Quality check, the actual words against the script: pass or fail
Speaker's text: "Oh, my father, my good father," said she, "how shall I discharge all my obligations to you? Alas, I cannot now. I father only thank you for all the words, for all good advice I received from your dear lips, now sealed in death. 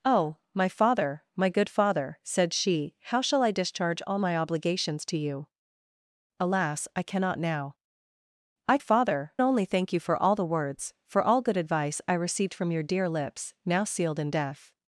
pass